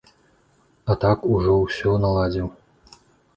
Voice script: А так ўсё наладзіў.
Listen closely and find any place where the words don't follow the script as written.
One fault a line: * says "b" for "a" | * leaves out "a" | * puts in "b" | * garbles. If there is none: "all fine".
* puts in "ужо"